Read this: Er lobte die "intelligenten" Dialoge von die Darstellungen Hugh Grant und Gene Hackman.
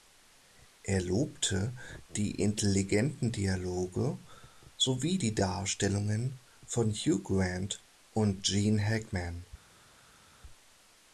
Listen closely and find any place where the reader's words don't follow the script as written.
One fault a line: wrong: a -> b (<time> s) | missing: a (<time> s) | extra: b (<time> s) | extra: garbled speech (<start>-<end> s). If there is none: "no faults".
wrong: von -> sowie (4.8 s)
extra: von (6.6 s)